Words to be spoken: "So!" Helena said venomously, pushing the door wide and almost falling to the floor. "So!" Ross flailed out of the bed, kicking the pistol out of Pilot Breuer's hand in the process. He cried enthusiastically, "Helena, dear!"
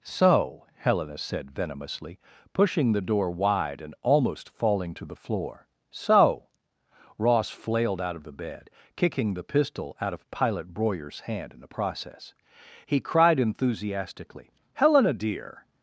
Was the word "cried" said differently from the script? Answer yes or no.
no